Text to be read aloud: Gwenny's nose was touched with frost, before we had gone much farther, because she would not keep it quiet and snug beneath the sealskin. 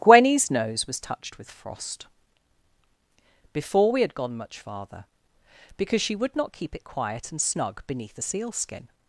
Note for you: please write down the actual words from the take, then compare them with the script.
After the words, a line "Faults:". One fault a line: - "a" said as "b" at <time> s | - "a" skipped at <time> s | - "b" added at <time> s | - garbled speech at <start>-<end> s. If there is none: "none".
Gwenny's nose was touched with frost, before we had gone much farther, because she would not keep it quiet and snug beneath the sealskin.
Faults:
none